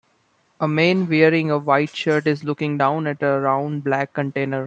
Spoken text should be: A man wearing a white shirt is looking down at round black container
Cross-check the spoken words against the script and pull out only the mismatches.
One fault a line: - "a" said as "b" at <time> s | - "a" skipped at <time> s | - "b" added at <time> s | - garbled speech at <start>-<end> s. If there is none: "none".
- "a" added at 3.2 s